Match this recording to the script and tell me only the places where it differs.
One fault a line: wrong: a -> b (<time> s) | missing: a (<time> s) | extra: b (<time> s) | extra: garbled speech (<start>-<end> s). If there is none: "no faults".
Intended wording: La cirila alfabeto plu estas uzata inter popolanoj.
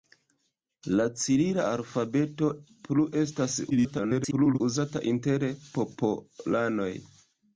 extra: garbled speech (3.7-4.6 s)